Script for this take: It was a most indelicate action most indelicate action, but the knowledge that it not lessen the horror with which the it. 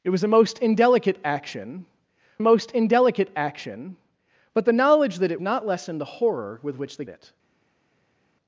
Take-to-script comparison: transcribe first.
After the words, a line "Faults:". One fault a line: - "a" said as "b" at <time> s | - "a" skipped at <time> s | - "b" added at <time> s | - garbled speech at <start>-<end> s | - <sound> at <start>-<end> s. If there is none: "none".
It was a most indelicate action most indelicate action, but the knowledge that it not lessen the horror with which the it.
Faults:
none